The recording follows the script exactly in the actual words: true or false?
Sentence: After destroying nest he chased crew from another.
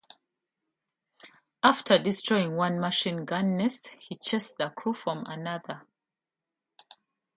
false